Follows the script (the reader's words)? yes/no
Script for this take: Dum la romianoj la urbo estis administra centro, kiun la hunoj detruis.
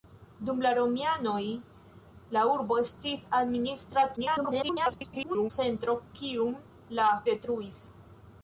no